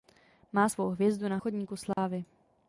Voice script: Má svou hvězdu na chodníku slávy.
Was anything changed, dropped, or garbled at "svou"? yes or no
no